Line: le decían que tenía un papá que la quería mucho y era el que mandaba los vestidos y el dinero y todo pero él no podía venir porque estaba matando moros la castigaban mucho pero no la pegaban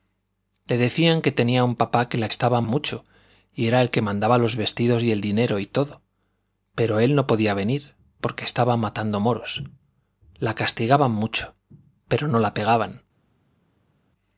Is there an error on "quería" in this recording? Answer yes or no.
yes